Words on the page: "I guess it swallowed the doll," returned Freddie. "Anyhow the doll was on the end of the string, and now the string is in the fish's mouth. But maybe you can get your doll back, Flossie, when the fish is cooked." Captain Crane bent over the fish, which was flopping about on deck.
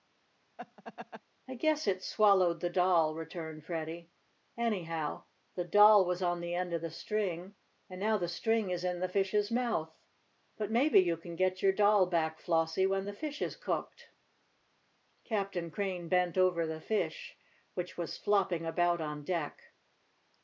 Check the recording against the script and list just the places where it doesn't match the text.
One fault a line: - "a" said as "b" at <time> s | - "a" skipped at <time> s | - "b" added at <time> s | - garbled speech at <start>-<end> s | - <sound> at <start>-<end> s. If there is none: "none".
- laugh at 0.6-1.2 s